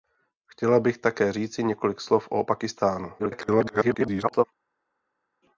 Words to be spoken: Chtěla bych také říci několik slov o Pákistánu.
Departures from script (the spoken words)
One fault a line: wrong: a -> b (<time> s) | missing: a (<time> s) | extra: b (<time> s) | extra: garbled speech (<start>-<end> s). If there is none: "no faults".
extra: garbled speech (3.2-4.4 s)